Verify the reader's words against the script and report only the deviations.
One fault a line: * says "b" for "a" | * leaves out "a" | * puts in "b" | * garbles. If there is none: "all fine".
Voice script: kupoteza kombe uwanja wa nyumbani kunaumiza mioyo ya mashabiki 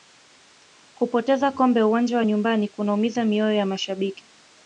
all fine